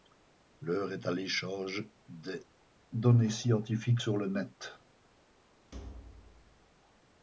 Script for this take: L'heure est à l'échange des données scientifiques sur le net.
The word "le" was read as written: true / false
true